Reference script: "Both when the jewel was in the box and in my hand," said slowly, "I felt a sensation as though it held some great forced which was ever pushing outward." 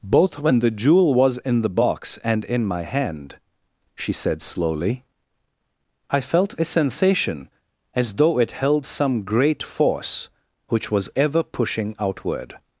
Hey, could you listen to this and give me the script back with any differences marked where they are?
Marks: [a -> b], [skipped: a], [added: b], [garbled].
"Both when the jewel was in the box and in my hand," [added: she] said slowly, "I felt a sensation as though it held some great [forced -> force] which was ever pushing outward."